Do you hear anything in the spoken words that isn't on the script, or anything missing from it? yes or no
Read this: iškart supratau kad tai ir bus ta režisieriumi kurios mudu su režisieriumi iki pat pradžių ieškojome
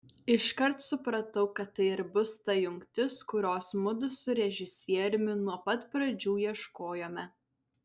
yes